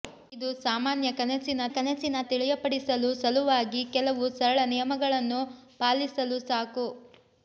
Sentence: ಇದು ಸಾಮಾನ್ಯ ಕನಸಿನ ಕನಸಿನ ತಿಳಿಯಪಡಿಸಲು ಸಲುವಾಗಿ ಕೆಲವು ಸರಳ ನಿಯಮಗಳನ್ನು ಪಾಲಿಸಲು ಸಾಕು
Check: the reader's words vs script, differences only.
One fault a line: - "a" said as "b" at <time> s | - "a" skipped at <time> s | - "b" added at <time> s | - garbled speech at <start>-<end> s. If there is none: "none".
none